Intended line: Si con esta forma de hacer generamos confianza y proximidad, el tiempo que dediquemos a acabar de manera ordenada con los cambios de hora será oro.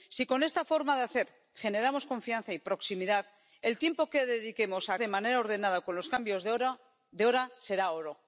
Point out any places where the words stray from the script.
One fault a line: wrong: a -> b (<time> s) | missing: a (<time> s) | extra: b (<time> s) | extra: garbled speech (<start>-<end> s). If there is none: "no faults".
missing: acabar (5.0 s)